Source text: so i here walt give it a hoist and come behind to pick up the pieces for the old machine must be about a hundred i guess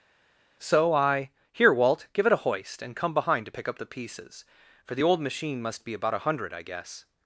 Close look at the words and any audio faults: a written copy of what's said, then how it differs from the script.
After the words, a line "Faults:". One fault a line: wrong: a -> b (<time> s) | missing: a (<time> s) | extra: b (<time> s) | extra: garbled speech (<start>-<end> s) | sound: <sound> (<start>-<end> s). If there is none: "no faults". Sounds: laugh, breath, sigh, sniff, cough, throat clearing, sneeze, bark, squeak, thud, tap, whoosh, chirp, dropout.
so i here walt give it a hoist and come behind to pick up the pieces for the old machine must be about a hundred i guess
Faults:
no faults